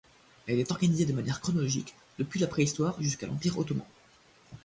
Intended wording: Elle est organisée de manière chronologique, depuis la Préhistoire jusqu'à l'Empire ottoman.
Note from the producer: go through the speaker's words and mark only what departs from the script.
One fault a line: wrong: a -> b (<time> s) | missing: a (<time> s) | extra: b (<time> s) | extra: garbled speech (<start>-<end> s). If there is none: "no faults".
no faults